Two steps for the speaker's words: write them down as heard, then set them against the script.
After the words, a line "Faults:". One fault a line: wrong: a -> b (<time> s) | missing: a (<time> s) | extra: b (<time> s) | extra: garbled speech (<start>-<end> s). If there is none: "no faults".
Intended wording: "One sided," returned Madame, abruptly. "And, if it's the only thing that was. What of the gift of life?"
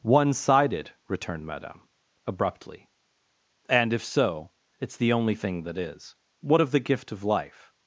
"One sided," returned Madame, abruptly. "And, if so, it's the only thing that is. What of the gift of life?"
Faults:
extra: so (4.0 s)
wrong: was -> is (5.8 s)